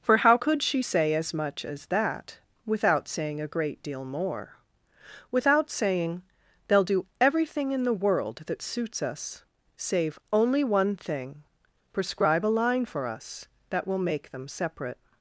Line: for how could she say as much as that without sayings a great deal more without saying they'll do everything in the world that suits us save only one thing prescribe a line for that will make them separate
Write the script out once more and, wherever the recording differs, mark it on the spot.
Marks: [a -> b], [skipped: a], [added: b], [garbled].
for how could she say as much as that without [sayings -> saying] a great deal more without saying they'll do everything in the world that suits us save only one thing prescribe a line for [added: us] that will make them separate